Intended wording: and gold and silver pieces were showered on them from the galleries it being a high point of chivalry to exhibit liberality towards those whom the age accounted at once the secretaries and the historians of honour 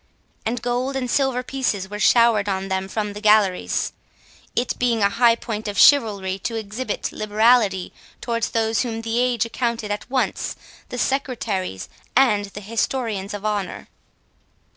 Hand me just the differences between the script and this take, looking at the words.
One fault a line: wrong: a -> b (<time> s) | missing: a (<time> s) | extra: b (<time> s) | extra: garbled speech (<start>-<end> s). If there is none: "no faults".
no faults